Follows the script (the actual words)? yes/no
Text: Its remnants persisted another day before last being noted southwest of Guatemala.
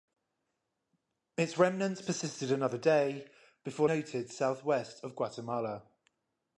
no